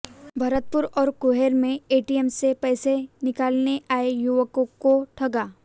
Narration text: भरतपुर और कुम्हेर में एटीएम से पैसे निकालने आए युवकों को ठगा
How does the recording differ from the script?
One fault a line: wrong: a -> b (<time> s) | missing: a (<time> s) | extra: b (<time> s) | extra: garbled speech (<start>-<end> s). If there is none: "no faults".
no faults